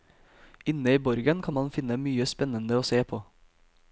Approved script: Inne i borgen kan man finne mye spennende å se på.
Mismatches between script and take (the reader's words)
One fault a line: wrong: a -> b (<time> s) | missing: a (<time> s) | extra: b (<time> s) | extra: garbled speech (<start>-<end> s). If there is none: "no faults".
no faults